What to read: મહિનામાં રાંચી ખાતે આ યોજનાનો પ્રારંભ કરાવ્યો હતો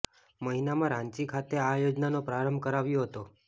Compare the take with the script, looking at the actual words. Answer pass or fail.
pass